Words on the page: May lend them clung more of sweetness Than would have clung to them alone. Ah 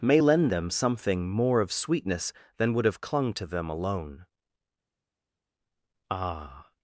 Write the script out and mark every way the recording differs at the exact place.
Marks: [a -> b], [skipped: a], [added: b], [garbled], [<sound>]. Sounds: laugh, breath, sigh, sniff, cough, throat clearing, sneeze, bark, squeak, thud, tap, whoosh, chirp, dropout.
May lend them [clung -> something] more of sweetness Than would have clung to them alone. Ah